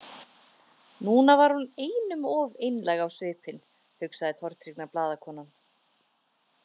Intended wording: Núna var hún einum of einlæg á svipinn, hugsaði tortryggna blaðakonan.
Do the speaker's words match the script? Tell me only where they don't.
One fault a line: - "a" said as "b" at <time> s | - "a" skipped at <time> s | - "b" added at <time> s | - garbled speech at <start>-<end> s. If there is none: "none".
none